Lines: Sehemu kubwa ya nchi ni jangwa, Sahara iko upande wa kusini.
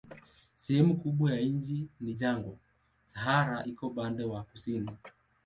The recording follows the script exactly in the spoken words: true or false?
true